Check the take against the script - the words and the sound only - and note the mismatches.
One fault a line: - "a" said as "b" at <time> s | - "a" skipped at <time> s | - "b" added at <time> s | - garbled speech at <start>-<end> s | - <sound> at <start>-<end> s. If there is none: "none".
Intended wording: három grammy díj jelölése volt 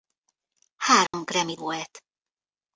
- dropout at 1.1-1.1 s
- "díj jelölése" skipped at 1.6 s